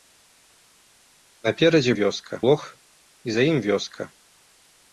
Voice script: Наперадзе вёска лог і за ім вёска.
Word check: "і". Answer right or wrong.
right